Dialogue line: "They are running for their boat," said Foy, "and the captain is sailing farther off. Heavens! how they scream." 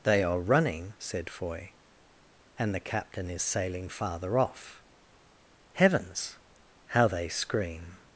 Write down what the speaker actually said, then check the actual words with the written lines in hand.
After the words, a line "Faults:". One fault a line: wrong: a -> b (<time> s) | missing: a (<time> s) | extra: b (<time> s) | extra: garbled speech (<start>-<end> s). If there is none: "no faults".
"They are running," said Foy, "and the captain is sailing farther off. Heavens! how they scream."
Faults:
missing: for their boat (0.9 s)